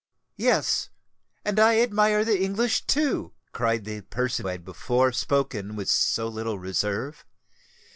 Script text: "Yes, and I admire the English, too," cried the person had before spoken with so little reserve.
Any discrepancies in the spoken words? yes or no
no